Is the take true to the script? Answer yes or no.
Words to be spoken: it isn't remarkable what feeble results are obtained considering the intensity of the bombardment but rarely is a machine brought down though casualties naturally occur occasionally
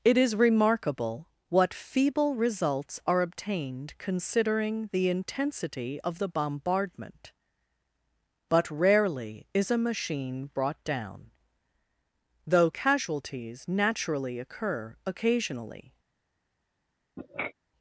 no